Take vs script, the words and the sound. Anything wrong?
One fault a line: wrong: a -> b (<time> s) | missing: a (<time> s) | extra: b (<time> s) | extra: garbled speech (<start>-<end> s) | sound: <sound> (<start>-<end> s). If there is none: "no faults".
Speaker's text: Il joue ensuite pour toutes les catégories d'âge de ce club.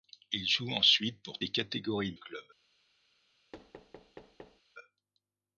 missing: toutes (1.4 s)
missing: d'âge de ce (2.1 s)
sound: thud (3.5-4.6 s)